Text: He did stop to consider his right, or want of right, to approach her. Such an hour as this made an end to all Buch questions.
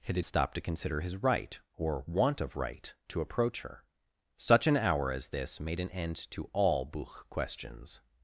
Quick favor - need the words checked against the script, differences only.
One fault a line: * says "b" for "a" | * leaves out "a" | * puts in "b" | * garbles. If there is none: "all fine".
all fine